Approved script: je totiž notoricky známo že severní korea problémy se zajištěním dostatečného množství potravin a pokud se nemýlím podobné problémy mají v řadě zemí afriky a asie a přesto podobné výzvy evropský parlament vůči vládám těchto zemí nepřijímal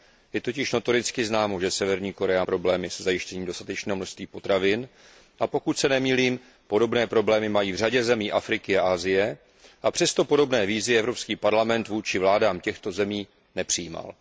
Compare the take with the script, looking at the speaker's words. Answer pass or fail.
pass